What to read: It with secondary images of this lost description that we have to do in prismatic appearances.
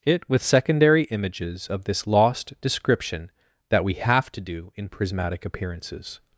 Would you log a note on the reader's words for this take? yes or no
no